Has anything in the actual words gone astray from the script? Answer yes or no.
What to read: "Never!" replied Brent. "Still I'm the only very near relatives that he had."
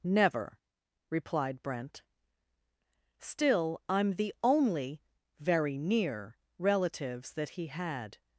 no